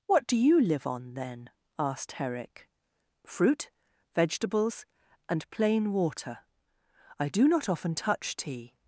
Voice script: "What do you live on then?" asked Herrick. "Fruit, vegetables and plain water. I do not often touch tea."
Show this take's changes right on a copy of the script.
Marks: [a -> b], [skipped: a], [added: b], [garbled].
"What do you live on then?" asked Herrick. "Fruit, vegetables and plain water. I do not often touch tea."